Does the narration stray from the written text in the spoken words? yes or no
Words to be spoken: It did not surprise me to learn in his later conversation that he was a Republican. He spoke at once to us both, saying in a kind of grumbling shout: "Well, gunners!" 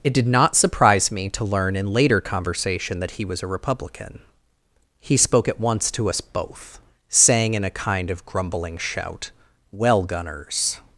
yes